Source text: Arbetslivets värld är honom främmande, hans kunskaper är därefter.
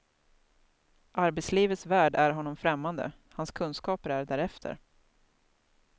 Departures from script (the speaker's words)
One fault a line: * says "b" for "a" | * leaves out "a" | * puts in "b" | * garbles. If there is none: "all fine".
all fine